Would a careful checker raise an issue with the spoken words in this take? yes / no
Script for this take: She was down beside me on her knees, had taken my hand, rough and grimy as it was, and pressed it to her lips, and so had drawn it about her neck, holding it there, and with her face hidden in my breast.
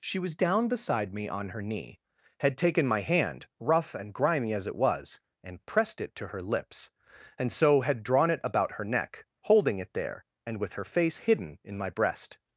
yes